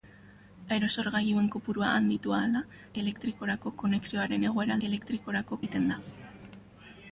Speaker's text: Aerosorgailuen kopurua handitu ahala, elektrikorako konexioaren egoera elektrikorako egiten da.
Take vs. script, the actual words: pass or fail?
pass